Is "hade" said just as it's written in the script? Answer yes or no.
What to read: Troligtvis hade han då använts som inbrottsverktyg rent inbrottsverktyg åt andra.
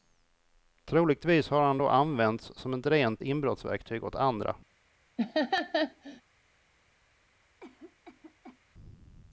no